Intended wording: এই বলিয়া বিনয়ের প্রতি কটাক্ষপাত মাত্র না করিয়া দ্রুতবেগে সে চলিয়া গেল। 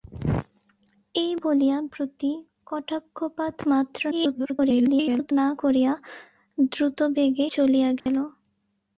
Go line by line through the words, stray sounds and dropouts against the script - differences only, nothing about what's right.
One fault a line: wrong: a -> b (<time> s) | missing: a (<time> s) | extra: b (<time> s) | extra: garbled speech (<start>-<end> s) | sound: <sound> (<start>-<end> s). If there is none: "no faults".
missing: বিনয়ের (1.8 s)
extra: garbled speech (4.1-5.3 s)
missing: সে (7.5 s)
sound: dropout (8.0-8.1 s)